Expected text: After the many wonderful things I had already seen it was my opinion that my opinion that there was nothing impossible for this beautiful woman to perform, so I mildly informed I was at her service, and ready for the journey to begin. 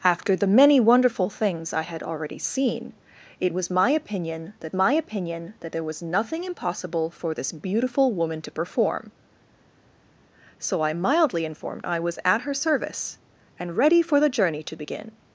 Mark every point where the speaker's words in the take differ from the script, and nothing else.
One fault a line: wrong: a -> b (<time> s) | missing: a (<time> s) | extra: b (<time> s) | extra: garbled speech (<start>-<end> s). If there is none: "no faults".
no faults